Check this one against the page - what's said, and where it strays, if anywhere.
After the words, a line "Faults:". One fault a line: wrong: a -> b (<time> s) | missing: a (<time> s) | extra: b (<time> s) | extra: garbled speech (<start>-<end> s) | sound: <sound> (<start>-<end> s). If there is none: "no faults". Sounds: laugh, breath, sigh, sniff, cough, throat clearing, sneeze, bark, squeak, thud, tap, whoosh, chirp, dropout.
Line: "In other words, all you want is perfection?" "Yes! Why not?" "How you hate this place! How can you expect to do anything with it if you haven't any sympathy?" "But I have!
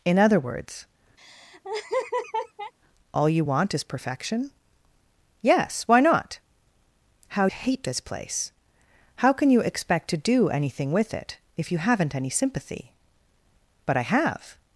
"In other words, all you want is perfection?" "Yes! Why not?" "How hate this place! How can you expect to do anything with it if you haven't any sympathy?" "But I have!
Faults:
sound: laugh (1.2-2.7 s)
missing: you (7.5 s)